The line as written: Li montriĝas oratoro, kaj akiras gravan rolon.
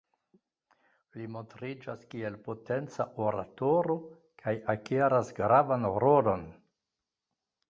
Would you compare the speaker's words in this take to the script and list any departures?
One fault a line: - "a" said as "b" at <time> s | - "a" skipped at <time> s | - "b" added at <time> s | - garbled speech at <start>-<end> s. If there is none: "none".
- "kiel potenca" added at 2.1 s